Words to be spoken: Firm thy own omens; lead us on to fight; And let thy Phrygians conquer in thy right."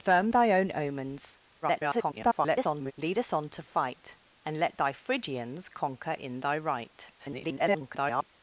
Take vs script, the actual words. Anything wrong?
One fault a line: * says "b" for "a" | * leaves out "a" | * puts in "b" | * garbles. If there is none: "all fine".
* garbles
* garbles